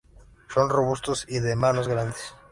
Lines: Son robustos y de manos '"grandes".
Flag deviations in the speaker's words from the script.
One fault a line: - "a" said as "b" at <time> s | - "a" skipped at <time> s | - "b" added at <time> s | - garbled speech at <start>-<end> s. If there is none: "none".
none